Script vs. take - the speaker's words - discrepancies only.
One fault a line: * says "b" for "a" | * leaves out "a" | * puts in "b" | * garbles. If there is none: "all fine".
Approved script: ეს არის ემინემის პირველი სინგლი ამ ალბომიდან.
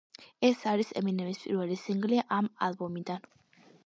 all fine